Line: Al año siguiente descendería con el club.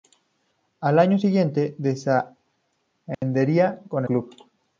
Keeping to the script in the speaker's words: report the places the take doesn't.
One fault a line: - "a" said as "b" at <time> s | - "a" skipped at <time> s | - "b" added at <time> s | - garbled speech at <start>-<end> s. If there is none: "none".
- "el" skipped at 4.0 s